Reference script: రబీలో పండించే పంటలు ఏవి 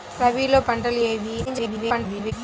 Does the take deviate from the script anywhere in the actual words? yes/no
yes